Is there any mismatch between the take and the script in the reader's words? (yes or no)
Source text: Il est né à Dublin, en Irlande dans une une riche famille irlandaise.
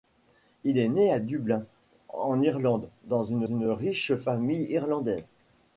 no